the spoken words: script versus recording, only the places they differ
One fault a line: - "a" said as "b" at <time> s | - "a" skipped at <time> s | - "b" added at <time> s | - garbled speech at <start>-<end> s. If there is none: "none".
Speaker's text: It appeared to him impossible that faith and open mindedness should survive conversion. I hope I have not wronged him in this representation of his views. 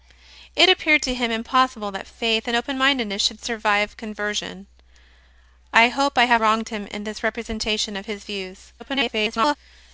- "not" skipped at 6.4 s
- garbled speech at 8.8-9.6 s